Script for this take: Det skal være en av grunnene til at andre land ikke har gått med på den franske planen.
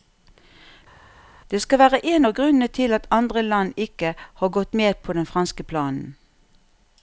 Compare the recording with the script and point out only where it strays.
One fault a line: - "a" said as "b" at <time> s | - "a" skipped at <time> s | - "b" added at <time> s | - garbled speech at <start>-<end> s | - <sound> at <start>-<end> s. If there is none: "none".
none